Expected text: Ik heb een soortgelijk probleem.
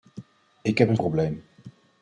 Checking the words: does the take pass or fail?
fail